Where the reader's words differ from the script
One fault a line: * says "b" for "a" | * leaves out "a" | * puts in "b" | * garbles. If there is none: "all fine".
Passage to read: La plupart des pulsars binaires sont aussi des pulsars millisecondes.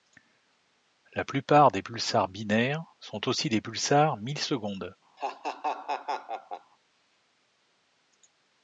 all fine